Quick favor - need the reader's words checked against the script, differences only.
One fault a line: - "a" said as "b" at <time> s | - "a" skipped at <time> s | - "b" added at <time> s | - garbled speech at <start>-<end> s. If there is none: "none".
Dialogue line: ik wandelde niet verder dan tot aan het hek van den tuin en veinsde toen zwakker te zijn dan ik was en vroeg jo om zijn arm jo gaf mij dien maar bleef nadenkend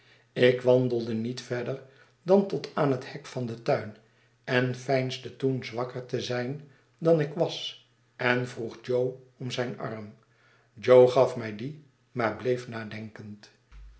none